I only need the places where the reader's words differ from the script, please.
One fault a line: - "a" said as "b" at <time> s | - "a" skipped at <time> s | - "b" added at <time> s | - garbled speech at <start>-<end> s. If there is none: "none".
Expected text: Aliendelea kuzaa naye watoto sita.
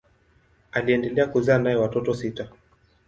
none